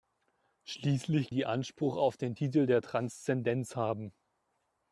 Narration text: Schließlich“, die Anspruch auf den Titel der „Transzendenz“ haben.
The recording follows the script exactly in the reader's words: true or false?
true